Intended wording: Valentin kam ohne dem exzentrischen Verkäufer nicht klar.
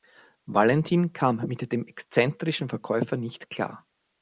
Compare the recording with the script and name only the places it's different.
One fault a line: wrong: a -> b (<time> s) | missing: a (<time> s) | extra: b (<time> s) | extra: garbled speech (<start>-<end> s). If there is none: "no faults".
wrong: ohne -> mit (1.4 s)